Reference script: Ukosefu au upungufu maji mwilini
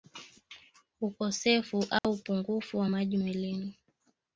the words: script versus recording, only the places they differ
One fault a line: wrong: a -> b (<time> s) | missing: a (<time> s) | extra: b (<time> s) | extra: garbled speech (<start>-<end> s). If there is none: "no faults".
extra: wa (2.8 s)